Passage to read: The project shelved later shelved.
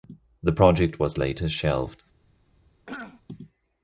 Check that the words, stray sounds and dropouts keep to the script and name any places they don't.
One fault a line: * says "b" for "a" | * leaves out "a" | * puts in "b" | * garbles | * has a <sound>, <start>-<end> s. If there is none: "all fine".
* says "was" for "shelved"
* has a throat clearing, 2.9-3.2 s